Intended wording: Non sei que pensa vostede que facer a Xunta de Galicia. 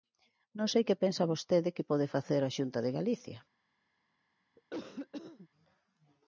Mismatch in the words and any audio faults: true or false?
true